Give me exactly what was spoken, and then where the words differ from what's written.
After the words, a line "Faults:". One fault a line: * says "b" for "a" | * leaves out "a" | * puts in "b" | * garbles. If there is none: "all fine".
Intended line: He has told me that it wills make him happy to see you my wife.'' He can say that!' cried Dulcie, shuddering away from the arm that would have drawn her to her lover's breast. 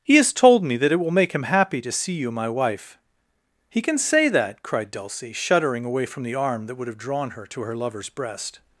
He has told me that it will make him happy to see you my wife.'' He can say that!' cried Dulcie, shuddering away from the arm that would have drawn her to her lover's breast.
Faults:
* says "will" for "wills"